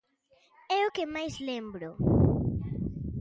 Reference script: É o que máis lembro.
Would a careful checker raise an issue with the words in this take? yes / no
no